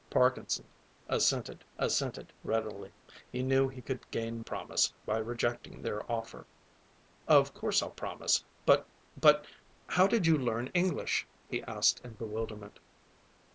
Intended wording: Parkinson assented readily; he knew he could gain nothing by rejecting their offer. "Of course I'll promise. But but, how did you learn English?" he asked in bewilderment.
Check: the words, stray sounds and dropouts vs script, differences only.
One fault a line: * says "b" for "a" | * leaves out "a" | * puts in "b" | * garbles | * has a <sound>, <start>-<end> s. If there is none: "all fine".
* puts in "assented"
* says "promise" for "nothing"